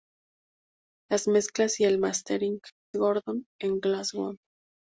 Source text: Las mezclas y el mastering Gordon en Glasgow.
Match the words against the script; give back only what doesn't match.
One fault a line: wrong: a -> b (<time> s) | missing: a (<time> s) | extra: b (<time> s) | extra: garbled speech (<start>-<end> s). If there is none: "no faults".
no faults